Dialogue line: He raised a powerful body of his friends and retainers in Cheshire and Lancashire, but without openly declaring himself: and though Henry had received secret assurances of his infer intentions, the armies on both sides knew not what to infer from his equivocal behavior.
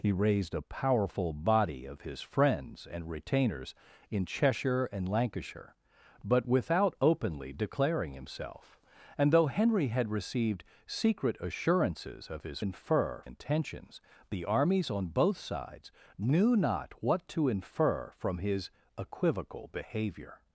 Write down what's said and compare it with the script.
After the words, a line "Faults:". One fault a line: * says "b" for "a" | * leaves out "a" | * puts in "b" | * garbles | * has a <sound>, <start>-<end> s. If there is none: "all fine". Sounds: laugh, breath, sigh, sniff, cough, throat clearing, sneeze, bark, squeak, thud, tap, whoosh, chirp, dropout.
He raised a powerful body of his friends and retainers in Cheshire and Lancashire, but without openly declaring himself: and though Henry had received secret assurances of his infer intentions, the armies on both sides knew not what to infer from his equivocal behavior.
Faults:
all fine